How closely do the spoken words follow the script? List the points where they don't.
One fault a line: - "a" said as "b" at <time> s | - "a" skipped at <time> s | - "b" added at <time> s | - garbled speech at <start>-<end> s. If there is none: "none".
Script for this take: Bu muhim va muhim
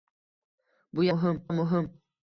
none